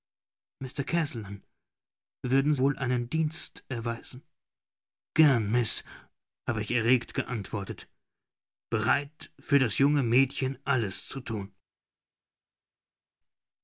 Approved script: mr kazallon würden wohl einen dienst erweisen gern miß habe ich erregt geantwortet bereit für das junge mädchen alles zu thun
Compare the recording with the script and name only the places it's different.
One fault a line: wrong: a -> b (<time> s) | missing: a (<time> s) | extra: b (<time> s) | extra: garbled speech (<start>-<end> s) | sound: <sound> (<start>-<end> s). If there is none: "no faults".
no faults